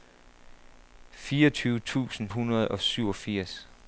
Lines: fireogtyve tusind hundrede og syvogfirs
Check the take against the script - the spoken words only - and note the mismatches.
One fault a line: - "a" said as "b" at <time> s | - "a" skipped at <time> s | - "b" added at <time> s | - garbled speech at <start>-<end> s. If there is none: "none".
none